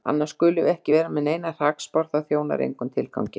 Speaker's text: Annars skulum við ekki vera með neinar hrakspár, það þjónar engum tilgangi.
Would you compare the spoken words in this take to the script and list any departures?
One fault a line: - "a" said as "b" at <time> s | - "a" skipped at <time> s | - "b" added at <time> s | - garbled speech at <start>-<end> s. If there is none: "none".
none